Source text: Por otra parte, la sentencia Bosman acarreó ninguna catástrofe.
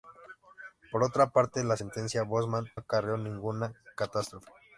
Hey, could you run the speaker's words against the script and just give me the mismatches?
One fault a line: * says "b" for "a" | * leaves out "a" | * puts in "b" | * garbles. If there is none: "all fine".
all fine